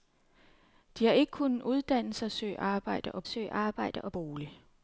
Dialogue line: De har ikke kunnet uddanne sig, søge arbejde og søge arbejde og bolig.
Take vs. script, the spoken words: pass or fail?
pass